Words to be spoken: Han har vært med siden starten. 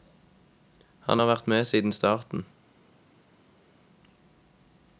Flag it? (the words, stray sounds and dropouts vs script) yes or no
no